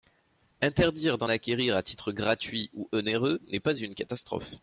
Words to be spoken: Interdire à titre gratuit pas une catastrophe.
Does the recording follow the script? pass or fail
fail